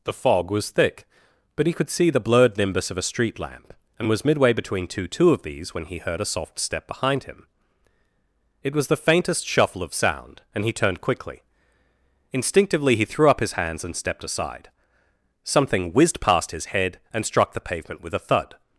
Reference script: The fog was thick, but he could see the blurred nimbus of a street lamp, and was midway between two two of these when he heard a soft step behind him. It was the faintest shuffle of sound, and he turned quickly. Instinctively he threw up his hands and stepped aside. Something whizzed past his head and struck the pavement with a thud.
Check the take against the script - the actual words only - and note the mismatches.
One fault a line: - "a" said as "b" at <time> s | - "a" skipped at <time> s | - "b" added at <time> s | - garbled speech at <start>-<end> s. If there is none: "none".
none